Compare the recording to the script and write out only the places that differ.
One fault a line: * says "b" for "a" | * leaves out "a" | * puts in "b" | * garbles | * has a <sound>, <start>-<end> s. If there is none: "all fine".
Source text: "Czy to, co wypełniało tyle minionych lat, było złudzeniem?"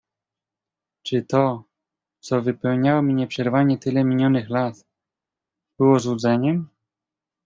* puts in "mi nieprzerwanie"